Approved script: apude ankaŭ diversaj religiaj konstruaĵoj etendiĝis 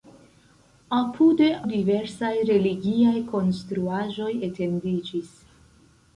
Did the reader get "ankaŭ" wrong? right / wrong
wrong